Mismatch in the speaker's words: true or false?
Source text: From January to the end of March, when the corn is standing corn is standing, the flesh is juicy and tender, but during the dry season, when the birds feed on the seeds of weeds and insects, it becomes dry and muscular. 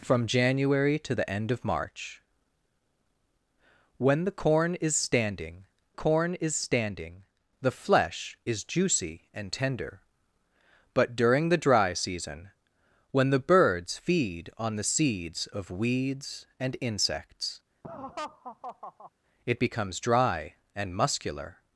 false